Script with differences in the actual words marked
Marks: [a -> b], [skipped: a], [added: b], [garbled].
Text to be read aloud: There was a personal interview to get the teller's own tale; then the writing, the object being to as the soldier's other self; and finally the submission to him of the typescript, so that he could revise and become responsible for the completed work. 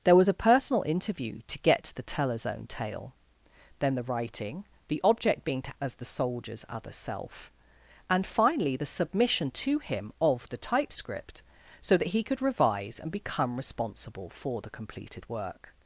There was a personal interview to get the teller's own tale; then the writing, the object being to as the soldier's other self; and finally the submission to him of the typescript, so that he could revise and become responsible for the completed work.